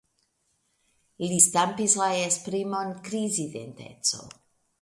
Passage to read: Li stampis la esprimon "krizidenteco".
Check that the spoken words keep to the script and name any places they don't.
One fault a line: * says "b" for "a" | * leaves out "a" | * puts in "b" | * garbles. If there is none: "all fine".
all fine